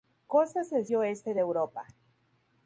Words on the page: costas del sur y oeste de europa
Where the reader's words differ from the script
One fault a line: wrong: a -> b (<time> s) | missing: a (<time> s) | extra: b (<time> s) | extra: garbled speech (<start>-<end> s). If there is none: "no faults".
missing: sur (0.9 s)